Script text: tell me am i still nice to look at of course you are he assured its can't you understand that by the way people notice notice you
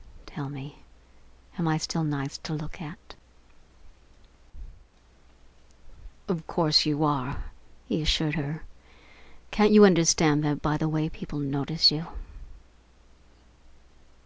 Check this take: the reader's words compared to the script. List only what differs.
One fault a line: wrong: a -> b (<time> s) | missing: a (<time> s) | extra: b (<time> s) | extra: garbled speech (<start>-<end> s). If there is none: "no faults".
wrong: its -> her (8.4 s)
missing: notice (11.9 s)